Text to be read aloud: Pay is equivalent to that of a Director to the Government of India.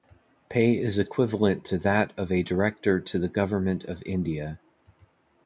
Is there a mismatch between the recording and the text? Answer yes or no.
no